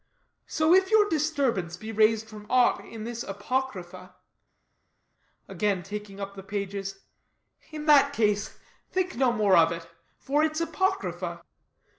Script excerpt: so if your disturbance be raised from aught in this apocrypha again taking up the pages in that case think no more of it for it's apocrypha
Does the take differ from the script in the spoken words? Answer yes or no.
no